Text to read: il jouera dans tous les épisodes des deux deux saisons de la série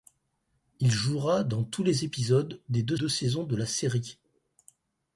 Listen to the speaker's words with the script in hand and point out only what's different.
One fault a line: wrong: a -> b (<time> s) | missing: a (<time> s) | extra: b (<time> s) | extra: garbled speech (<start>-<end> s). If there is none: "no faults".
no faults